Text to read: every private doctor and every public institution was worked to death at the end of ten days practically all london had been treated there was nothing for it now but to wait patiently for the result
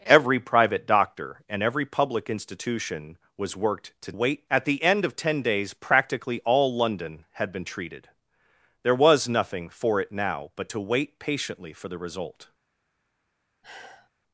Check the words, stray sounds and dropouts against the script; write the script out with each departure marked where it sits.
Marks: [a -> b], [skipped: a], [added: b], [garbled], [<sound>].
every private doctor and every public institution was worked to [death -> wait] at the end of ten days practically all london had been treated there was nothing for it now but to wait patiently for the result [sigh]